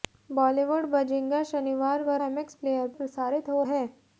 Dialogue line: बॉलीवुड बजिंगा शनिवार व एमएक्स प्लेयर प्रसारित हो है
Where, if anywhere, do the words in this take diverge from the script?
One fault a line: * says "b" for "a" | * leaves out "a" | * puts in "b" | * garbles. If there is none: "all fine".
all fine